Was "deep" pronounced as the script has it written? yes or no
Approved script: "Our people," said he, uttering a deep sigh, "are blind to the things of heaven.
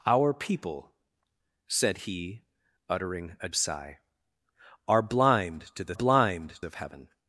no